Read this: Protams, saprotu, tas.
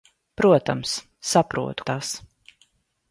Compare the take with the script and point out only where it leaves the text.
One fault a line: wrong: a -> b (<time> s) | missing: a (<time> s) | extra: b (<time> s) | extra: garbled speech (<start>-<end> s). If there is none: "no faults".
no faults